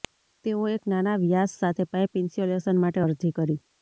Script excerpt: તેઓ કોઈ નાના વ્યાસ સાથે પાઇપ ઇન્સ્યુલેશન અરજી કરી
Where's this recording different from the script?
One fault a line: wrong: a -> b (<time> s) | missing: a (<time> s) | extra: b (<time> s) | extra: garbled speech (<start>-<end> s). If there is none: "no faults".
wrong: કોઈ -> એક (0.7 s)
extra: માટે (2.8 s)